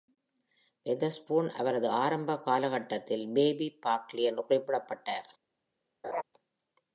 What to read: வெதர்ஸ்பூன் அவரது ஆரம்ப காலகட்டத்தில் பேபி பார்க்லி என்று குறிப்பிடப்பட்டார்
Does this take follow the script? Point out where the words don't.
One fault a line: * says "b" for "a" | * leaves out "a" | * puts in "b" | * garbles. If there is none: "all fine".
all fine